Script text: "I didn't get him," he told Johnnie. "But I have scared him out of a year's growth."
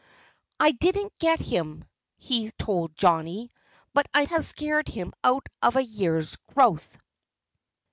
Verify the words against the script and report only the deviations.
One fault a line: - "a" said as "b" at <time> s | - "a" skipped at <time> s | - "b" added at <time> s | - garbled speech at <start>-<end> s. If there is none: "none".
none